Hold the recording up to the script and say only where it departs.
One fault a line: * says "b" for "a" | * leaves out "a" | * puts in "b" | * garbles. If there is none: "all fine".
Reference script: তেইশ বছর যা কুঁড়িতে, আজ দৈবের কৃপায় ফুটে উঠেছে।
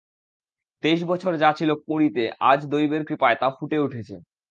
* puts in "ছিল"
* puts in "তা"